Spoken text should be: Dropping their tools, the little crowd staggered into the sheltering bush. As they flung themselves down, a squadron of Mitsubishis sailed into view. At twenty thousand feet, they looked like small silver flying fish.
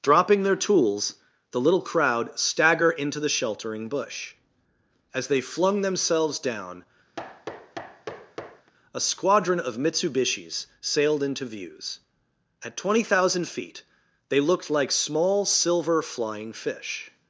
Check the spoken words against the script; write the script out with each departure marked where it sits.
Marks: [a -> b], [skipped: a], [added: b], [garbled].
Dropping their tools, the little crowd [staggered -> stagger] into the sheltering bush. As they flung themselves down, a squadron of Mitsubishis sailed into [view. -> views] At twenty thousand feet, they looked like small silver flying fish.